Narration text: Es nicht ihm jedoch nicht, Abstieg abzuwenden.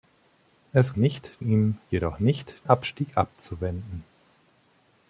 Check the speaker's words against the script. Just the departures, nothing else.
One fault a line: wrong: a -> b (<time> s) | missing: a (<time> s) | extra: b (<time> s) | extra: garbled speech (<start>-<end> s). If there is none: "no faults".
no faults